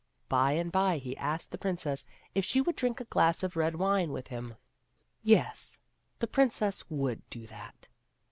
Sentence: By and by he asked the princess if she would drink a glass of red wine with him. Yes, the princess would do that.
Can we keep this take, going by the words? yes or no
yes